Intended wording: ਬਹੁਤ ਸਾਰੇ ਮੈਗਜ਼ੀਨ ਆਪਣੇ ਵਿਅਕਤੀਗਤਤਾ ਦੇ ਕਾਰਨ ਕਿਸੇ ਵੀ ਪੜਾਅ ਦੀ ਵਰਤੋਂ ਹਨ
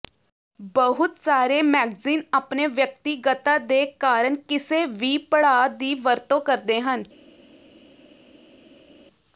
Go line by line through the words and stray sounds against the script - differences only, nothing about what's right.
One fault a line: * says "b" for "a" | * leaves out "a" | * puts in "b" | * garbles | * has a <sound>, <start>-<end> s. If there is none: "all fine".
* puts in "ਕਰਦੇ"